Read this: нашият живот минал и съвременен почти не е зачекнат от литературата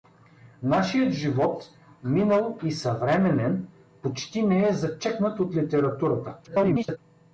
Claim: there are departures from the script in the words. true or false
true